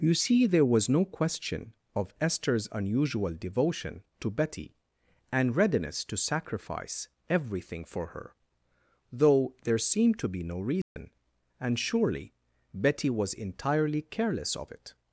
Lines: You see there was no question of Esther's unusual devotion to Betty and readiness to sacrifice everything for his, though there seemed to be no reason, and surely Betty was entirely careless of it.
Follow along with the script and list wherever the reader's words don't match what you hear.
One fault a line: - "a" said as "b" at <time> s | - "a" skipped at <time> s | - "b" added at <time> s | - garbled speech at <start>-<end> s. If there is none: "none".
- "his" said as "her" at 8.1 s